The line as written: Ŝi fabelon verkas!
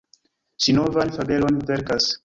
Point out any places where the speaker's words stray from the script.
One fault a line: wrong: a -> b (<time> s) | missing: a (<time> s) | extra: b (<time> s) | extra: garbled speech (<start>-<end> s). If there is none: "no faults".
extra: novan (0.8 s)